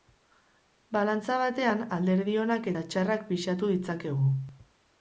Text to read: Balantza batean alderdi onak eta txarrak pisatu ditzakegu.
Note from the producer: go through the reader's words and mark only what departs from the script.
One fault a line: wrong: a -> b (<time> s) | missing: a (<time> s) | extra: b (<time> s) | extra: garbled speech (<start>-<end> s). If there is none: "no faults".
no faults